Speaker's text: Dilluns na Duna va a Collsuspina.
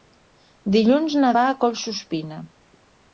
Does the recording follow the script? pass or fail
fail